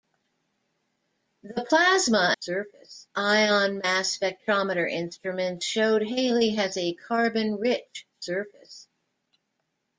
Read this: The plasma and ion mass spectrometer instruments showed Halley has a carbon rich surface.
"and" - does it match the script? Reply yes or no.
no